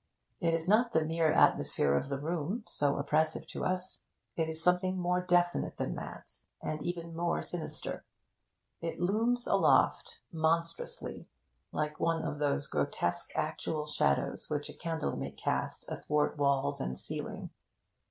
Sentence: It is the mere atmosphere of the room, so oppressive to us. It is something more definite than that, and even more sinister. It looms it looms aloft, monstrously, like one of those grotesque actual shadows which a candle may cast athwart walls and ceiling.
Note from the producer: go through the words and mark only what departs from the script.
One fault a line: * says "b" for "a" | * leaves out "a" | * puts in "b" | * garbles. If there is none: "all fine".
* puts in "not"
* leaves out "it looms"